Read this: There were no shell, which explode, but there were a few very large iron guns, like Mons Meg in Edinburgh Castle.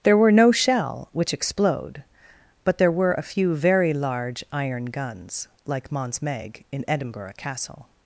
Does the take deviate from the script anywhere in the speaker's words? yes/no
no